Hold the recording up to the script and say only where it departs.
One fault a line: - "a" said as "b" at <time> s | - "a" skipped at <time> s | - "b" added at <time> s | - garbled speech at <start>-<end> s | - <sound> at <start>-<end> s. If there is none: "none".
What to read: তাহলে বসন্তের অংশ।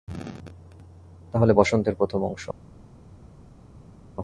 - "প্রথম" added at 1.9 s